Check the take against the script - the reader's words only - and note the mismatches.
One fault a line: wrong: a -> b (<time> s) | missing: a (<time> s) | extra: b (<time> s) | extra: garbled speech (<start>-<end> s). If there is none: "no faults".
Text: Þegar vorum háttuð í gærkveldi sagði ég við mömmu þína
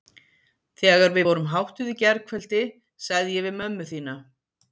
extra: við (1.2 s)